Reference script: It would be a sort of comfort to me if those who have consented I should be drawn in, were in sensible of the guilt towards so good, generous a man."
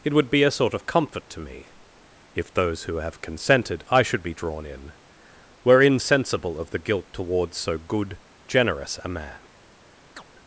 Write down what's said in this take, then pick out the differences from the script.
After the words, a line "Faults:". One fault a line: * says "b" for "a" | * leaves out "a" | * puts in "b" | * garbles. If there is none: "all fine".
It would be a sort of comfort to me if those who have consented I should be drawn in, were in sensible of the guilt towards so good, generous a man."
Faults:
all fine